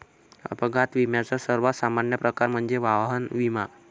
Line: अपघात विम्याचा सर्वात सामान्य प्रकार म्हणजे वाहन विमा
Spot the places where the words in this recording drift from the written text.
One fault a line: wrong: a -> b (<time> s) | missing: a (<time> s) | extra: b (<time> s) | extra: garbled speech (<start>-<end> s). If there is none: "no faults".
no faults